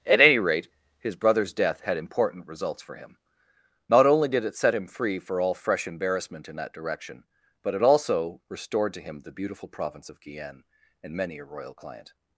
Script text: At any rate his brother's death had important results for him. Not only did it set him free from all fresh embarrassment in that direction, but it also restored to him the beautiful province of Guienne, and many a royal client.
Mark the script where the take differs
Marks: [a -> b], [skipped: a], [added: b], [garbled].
At any rate his brother's death had important results for him. Not only did it set him free [from -> for] all fresh embarrassment in that direction, but it also restored to him the beautiful province of Guienne, and many a royal client.